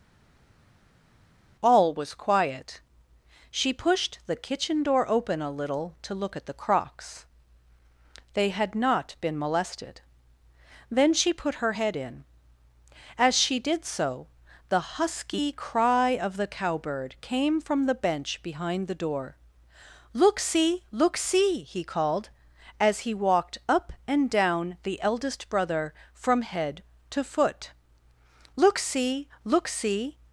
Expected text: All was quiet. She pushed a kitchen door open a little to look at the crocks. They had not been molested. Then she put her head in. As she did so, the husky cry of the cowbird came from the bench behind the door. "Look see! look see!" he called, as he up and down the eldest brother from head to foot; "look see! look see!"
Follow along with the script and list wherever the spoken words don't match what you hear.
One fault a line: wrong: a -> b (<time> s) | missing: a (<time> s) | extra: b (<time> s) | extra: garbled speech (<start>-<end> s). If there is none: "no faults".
wrong: a -> the (4.3 s)
extra: walked (23.1 s)